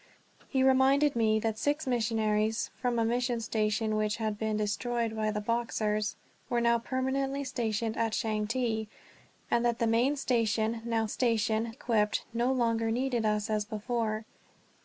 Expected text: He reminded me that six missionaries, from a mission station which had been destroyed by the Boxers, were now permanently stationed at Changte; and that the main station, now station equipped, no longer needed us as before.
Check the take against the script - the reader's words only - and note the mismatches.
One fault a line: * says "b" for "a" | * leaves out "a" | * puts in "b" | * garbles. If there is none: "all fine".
all fine